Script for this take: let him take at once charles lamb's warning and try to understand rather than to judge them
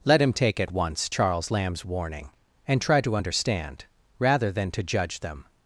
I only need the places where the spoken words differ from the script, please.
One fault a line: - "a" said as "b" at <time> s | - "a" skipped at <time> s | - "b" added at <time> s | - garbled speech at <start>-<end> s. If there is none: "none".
none